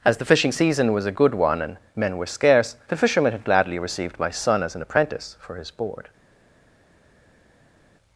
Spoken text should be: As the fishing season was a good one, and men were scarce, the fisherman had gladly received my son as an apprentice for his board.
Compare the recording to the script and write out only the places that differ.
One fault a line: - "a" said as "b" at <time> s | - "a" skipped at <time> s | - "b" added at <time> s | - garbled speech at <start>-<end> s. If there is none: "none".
none